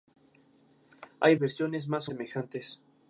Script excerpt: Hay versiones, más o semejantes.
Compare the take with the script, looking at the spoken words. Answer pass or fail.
pass